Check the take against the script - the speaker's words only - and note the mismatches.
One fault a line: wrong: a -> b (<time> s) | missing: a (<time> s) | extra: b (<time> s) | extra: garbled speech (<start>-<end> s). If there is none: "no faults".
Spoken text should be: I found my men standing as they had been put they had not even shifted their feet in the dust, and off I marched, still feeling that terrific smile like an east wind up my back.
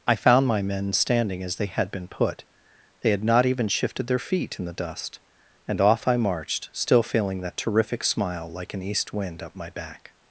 no faults